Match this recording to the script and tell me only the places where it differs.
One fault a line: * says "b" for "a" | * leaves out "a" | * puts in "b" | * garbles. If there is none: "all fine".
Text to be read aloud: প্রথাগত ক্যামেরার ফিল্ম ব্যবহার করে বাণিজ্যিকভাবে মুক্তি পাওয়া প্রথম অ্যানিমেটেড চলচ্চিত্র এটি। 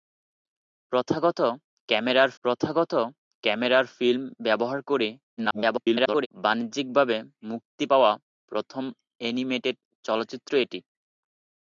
* puts in "প্রথাগত ক্যামেরার"
* garbles